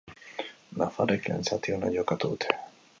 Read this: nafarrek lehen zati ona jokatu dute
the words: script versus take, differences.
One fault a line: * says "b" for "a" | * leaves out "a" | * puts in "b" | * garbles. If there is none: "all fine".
all fine